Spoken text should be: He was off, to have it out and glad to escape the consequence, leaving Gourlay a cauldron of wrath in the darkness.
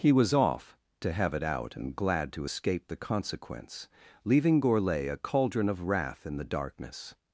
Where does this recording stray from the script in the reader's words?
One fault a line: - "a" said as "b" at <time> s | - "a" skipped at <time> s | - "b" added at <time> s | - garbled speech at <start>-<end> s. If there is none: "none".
none